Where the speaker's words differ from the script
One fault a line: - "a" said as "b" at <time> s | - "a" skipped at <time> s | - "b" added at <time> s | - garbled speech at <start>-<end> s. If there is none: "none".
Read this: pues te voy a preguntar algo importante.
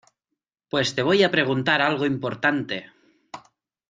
none